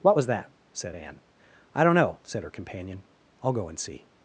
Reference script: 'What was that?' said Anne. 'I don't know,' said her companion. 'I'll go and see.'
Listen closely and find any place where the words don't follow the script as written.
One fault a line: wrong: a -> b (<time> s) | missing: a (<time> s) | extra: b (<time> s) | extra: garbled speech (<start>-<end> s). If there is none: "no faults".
no faults